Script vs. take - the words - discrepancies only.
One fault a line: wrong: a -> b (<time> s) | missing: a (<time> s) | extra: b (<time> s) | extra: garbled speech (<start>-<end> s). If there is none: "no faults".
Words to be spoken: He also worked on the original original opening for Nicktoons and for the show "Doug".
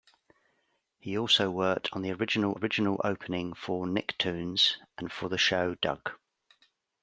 no faults